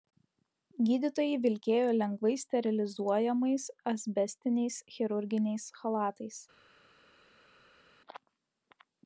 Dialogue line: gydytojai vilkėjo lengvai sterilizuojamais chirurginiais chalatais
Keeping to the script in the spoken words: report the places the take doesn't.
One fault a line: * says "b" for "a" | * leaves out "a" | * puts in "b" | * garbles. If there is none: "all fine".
* puts in "asbestiniais"